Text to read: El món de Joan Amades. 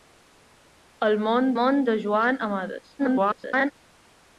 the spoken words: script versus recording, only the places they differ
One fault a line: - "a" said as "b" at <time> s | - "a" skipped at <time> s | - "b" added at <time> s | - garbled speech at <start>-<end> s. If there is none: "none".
- "món" added at 1.6 s
- garbled speech at 3.0-3.7 s